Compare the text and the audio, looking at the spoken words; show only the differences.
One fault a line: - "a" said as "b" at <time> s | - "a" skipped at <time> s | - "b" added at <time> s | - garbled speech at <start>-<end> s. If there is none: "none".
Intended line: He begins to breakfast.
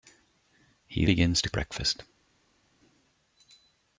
none